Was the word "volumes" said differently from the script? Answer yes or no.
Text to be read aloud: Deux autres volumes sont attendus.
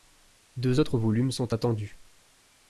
no